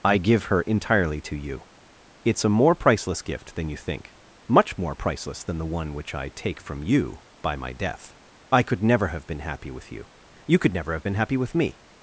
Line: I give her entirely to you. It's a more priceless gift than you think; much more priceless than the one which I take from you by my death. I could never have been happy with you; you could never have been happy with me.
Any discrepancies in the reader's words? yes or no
no